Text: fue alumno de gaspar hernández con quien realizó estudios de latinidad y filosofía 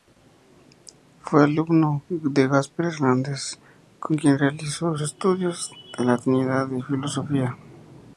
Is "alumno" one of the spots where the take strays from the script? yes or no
no